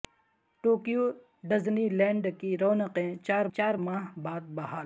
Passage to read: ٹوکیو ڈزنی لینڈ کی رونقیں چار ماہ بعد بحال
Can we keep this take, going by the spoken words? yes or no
no